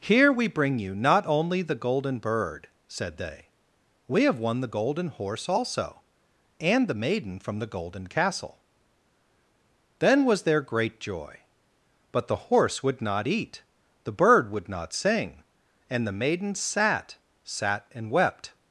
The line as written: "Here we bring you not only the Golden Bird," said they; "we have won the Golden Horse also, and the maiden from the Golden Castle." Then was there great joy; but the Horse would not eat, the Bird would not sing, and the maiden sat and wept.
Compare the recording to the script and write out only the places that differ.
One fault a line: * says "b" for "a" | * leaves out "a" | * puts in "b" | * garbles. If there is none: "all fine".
* puts in "sat"